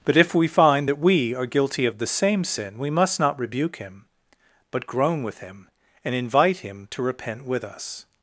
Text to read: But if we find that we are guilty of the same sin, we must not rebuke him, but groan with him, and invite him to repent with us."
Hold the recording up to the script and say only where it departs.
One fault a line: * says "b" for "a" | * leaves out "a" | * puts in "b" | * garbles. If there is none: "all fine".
all fine